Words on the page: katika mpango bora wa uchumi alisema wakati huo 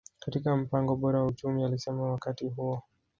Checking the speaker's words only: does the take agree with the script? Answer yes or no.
yes